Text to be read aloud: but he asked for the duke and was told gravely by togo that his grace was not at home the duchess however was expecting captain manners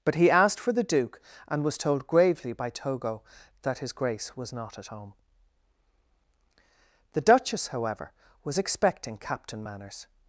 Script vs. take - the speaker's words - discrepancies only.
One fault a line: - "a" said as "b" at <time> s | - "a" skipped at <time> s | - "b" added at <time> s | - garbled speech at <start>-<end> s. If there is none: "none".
none